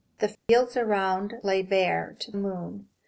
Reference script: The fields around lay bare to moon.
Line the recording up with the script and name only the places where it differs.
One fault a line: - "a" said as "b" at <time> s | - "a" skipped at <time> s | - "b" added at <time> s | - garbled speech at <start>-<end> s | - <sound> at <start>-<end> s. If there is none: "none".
- dropout at 0.4-0.5 s